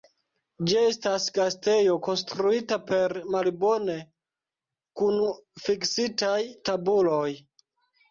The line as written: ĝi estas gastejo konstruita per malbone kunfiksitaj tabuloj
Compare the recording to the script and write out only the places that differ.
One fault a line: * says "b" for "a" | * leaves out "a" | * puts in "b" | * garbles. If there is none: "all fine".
all fine